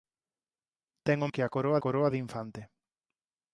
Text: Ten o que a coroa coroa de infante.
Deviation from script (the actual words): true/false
false